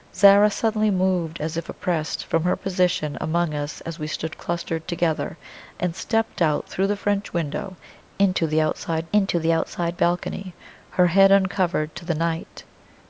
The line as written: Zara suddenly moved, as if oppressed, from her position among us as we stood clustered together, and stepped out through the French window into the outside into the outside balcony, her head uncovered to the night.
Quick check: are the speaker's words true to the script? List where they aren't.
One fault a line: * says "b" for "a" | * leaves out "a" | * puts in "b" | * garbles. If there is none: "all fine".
all fine